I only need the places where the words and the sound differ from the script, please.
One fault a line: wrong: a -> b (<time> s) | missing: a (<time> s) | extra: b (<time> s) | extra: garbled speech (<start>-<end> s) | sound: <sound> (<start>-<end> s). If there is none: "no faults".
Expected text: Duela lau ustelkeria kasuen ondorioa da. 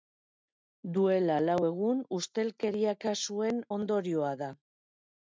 extra: egun (1.7 s)